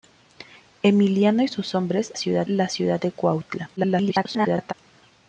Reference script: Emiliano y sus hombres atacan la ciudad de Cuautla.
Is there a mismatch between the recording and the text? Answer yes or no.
yes